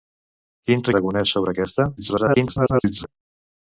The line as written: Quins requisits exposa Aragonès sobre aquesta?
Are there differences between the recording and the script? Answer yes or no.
yes